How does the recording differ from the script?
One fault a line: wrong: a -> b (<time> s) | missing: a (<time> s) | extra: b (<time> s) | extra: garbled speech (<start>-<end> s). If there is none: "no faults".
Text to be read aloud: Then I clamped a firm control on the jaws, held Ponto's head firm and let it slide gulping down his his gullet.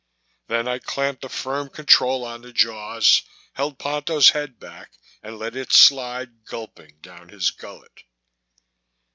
wrong: firm -> back (4.6 s)
missing: his (7.5 s)